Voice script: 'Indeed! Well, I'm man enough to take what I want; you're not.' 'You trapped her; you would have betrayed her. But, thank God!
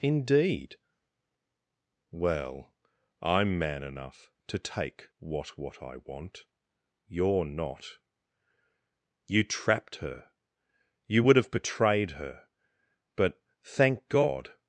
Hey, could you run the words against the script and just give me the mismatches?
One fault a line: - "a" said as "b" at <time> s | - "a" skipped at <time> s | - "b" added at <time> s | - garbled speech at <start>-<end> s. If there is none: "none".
- "what" added at 5.6 s